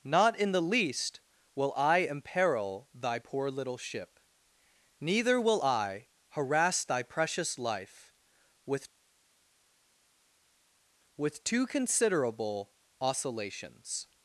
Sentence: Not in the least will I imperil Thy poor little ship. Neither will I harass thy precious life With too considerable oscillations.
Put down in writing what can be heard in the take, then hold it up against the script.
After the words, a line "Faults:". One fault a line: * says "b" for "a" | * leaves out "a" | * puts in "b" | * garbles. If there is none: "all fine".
Not in the least will I imperil Thy poor little ship. Neither will I harass thy precious life With With too considerable oscillations.
Faults:
* puts in "With"